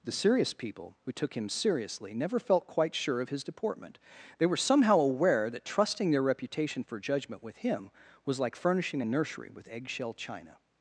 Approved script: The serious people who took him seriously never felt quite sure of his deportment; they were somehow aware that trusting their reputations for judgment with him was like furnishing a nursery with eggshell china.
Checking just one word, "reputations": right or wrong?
wrong